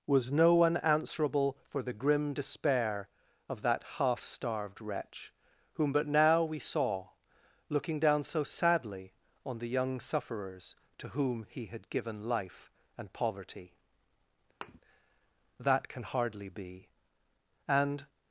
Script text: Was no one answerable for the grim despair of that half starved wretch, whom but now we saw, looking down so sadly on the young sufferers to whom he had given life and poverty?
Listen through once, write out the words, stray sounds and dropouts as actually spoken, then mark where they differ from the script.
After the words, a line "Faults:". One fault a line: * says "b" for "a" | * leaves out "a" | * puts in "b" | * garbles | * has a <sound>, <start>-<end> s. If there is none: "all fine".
Was no one answerable for the grim despair of that half starved wretch, whom but now we saw, looking down so sadly on the young sufferers to whom he had given life and poverty? That can hardly be. And
Faults:
* has a thud, 14.6-14.8 s
* puts in "That can hardly be And"